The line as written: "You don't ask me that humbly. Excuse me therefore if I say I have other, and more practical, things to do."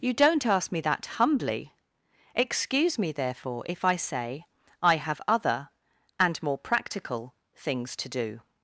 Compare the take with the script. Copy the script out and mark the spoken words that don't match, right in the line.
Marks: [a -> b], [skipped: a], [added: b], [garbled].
"You don't ask me that humbly. Excuse me therefore if I say I have other, and more practical, things to do."